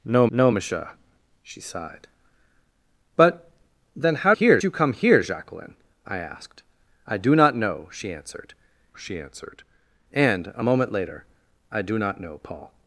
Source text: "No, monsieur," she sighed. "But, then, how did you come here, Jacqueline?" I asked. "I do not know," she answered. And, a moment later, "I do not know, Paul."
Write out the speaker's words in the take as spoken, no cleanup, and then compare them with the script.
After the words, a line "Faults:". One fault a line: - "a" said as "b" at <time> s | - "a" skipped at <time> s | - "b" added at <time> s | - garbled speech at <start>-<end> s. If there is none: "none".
"No no, monsieur," she sighed. "But, then, how here you come here, Jacqueline?" I asked. "I do not know," she answered she answered. And, a moment later, "I do not know, Paul."
Faults:
- "no" added at 0.3 s
- "did" said as "here" at 4.3 s
- "she answered" added at 9.0 s